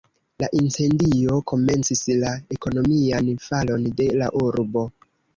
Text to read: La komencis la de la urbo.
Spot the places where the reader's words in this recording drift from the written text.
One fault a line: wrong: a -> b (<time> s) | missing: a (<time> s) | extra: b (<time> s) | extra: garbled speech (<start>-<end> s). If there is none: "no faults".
extra: incendio (0.6 s)
extra: ekonomian falon (2.6 s)